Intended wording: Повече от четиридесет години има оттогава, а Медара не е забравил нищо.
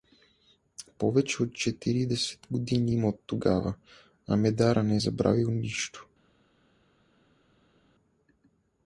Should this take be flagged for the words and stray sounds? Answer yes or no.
no